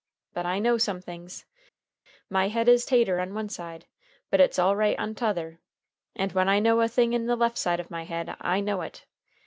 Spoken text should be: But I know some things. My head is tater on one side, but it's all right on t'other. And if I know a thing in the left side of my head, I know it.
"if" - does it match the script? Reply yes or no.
no